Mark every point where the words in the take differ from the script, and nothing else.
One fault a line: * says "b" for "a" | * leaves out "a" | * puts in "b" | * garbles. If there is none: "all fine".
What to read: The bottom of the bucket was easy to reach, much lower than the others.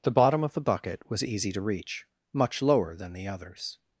all fine